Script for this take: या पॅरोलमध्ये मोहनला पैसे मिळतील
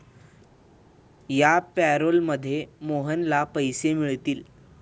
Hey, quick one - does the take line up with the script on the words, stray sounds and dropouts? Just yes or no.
yes